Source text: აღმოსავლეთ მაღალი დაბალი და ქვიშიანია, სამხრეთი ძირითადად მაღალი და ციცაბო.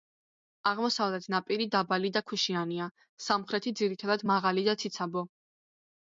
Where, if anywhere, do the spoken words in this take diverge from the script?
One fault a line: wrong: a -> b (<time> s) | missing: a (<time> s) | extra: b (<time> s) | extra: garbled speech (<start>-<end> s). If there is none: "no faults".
wrong: მაღალი -> ნაპირი (1.3 s)